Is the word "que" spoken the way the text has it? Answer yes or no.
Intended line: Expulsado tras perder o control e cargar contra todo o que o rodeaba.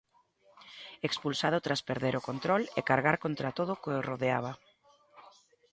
yes